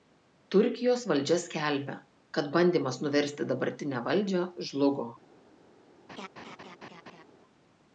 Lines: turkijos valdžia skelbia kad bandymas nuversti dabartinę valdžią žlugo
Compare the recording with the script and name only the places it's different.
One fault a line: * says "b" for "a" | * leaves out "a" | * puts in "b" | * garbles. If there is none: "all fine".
all fine